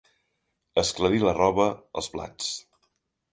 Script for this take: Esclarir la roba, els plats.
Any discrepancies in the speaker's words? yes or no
no